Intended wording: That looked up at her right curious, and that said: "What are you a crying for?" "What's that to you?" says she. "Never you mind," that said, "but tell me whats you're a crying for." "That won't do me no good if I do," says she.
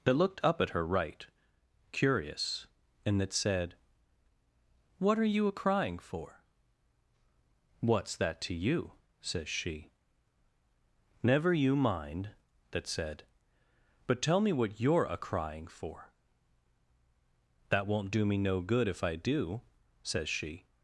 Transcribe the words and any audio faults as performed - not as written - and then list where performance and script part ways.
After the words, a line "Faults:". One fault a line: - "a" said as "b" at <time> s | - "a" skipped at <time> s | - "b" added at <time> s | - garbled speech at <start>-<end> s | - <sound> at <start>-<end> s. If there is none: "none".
That looked up at her right curious, and that said: "What are you a crying for?" "What's that to you?" says she. "Never you mind," that said, "but tell me what you're a crying for." "That won't do me no good if I do," says she.
Faults:
- "whats" said as "what" at 14.5 s